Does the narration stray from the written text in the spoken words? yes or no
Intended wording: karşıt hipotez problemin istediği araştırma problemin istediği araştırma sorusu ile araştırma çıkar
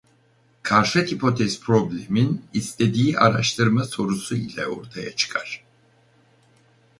yes